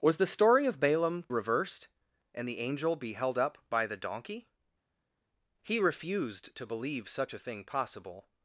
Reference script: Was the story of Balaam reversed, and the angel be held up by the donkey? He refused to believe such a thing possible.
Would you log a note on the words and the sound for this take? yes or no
no